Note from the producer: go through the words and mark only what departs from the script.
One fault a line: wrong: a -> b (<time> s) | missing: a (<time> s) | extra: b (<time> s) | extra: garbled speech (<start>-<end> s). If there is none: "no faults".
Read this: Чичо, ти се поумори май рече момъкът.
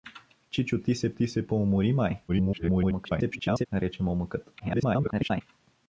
extra: ти се (1.1 s)
extra: garbled speech (2.3-3.7 s)
extra: garbled speech (4.6-5.4 s)